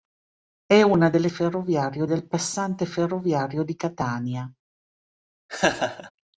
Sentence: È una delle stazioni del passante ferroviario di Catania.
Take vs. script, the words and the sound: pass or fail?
fail